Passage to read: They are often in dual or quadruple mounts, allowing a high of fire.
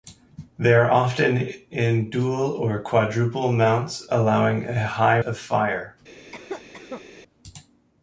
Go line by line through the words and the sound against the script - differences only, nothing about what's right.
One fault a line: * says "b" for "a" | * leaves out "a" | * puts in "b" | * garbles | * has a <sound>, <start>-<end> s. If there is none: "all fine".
* has a cough, 6.3-7.0 s